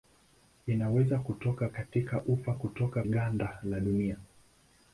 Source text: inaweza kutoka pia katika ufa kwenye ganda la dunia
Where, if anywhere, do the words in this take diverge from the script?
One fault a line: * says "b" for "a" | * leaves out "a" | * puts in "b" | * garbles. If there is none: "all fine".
* leaves out "pia"
* says "kutoka" for "kwenye"